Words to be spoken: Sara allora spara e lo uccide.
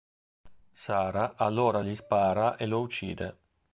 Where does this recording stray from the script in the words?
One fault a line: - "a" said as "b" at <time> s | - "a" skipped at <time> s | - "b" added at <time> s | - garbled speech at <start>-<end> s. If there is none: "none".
- "gli" added at 1.8 s